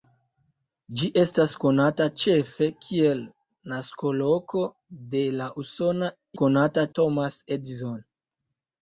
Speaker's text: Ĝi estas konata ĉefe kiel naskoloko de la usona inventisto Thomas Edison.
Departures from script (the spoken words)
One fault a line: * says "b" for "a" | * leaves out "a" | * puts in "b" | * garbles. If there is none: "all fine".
* says "konata" for "inventisto"